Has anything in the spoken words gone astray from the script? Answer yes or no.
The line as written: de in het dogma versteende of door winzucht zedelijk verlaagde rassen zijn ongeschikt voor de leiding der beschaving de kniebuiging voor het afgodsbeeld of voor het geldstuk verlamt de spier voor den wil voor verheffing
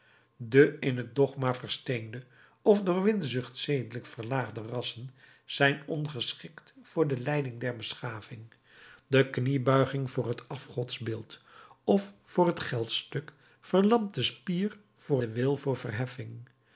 no